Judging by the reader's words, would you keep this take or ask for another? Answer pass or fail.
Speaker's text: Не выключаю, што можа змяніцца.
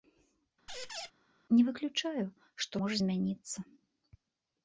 pass